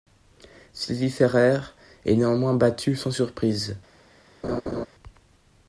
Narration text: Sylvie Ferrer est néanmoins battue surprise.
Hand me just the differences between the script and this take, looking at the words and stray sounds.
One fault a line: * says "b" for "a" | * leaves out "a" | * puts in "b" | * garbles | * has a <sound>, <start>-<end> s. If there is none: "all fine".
* puts in "sans"
* has a laugh, 4.4-4.9 s